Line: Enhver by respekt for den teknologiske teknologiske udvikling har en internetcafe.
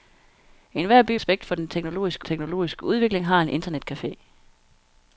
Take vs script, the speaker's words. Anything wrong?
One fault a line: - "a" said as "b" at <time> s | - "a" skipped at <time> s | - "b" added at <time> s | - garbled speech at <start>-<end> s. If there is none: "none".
none